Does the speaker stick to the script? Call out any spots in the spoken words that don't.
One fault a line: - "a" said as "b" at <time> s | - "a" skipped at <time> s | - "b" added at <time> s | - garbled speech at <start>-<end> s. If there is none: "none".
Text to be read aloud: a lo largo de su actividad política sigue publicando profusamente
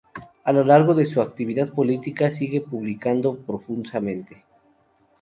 none